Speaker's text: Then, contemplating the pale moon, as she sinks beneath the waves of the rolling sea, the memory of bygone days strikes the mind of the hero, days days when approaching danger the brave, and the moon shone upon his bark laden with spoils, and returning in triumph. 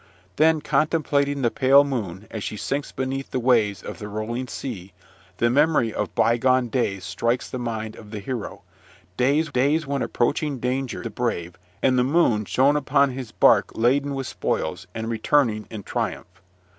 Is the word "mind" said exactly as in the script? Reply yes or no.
yes